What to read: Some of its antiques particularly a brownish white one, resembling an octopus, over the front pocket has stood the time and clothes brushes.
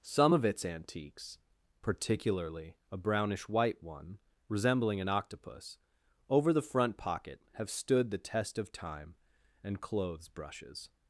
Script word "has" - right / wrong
wrong